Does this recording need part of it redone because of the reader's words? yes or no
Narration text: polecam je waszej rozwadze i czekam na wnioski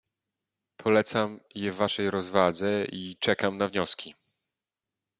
no